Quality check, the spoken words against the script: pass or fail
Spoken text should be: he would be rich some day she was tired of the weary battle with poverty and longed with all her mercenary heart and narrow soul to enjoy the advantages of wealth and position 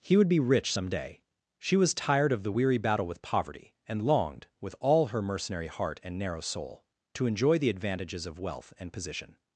pass